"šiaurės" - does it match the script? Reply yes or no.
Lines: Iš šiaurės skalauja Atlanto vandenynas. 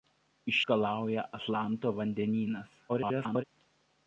no